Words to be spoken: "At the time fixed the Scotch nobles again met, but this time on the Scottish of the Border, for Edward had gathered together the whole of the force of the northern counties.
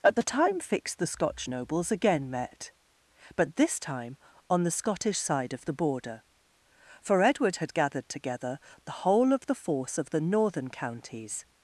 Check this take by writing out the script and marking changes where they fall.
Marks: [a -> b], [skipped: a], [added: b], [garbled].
"At the time fixed the Scotch nobles again met, but this time on the Scottish [added: side] of the Border, for Edward had gathered together the whole of the force of the northern counties.